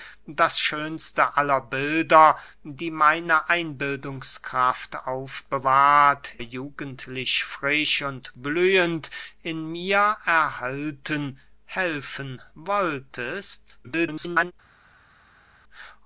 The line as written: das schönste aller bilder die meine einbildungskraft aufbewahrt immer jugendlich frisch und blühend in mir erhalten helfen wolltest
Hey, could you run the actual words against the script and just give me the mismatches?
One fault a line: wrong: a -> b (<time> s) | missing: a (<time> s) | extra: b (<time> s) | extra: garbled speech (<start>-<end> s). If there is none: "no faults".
missing: immer (6.3 s)
extra: garbled speech (13.8-14.5 s)